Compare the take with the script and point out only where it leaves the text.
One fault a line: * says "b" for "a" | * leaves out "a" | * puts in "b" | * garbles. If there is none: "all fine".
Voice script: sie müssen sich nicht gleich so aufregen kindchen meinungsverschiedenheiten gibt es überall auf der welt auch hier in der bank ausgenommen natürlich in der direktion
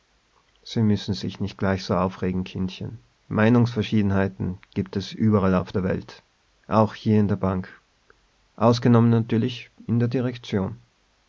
all fine